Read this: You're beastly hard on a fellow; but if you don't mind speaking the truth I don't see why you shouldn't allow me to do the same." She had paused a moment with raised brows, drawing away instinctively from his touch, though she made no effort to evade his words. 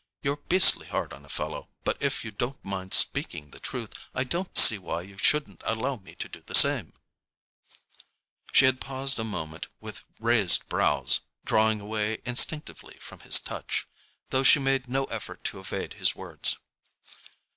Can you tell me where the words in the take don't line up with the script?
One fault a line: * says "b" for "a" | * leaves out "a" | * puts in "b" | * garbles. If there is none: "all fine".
all fine